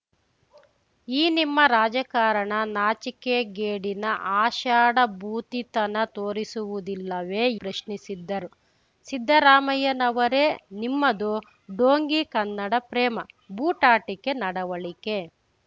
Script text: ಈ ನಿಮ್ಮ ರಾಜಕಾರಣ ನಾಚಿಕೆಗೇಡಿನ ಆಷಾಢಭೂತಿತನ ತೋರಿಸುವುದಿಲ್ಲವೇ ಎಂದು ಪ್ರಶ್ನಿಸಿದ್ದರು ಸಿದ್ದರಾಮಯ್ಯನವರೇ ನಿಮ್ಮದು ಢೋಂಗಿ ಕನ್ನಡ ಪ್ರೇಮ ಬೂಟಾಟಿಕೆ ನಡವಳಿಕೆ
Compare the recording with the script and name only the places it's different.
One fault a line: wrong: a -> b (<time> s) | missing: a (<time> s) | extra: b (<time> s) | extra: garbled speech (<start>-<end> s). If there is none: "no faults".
missing: ಎಂದು (7.4 s)